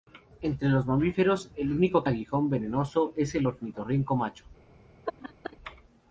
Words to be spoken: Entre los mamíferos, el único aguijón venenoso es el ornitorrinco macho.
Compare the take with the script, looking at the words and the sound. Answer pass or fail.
fail